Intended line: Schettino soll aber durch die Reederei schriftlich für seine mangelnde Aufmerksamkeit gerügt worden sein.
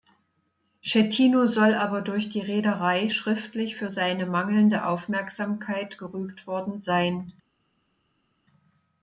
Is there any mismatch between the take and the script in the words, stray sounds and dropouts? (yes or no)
no